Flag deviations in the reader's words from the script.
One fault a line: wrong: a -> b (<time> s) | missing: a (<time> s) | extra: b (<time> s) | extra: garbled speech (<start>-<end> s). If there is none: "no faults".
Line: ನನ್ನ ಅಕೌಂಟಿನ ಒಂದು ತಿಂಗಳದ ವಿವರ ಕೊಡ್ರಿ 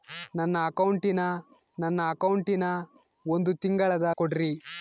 extra: ನನ್ನ ಅಕೌಂಟಿನ (1.8 s)
missing: ವಿವರ (4.1 s)